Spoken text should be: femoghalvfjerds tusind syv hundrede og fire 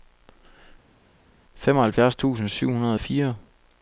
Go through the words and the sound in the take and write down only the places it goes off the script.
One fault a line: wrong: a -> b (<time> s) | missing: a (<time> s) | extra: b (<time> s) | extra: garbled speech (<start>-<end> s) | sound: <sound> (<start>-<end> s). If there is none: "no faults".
no faults